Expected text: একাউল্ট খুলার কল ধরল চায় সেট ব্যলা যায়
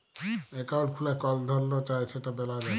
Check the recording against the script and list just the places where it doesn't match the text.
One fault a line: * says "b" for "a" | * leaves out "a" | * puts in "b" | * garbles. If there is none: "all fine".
all fine